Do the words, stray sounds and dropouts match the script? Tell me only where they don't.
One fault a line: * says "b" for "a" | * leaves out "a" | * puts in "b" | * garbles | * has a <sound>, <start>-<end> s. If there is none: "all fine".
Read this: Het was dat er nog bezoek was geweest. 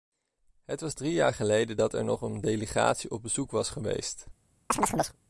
* puts in "drie jaar geleden"
* puts in "een delegatie op"
* has a chirp, 4.7-5.2 s